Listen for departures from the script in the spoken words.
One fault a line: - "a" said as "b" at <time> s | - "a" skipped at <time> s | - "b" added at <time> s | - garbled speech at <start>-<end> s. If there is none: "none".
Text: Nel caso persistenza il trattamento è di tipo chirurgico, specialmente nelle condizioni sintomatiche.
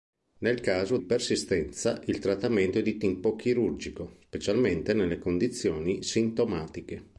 none